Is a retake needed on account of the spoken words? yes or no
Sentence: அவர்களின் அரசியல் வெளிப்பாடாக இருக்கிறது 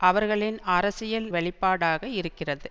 no